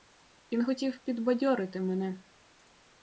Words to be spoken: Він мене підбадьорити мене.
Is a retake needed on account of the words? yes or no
yes